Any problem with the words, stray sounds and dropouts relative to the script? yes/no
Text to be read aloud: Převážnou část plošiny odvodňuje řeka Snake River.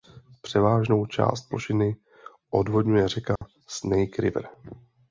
yes